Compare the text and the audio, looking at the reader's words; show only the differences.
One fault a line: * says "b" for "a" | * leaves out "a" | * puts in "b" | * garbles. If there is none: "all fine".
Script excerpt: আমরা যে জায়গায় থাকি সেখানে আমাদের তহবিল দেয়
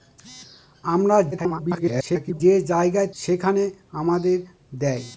* garbles
* leaves out "থাকি"
* leaves out "তহবিল"